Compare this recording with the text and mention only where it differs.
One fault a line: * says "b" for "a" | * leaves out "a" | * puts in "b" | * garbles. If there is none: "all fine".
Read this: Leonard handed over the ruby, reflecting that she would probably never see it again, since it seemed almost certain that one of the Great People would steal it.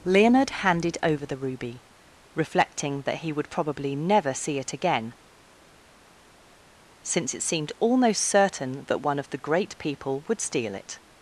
* says "he" for "she"